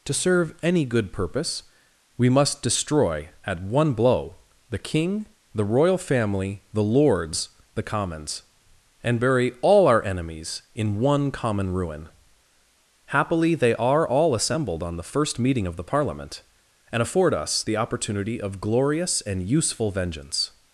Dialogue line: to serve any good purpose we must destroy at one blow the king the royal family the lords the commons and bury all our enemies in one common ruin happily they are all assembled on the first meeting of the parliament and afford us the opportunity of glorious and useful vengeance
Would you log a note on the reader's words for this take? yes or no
no